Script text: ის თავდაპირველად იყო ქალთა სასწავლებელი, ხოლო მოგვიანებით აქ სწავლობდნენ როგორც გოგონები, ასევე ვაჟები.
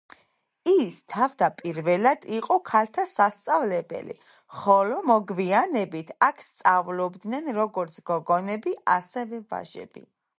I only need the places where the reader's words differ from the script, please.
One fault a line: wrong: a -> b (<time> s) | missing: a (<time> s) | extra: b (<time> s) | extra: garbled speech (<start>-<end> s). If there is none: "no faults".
no faults